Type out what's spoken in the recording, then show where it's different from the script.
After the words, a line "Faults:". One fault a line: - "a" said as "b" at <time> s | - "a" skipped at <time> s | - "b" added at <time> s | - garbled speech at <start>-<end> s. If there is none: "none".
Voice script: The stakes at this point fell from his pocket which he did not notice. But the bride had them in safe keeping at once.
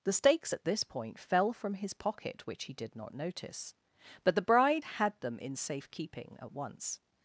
The stakes at this point fell from his pocket which he did not notice. But the bride had them in safe keeping at once.
Faults:
none